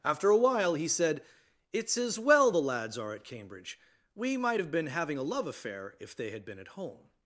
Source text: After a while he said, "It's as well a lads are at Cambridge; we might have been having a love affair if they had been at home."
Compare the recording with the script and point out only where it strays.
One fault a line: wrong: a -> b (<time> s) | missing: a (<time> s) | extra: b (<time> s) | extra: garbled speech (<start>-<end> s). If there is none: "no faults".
wrong: a -> the (2.5 s)